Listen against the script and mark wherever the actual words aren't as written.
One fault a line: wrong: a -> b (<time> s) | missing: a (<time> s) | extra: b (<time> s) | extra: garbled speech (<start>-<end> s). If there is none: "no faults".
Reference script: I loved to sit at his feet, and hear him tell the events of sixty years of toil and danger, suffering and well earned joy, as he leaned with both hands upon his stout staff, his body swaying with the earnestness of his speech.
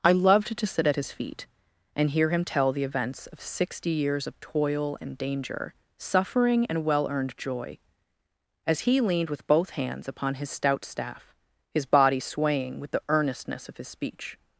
no faults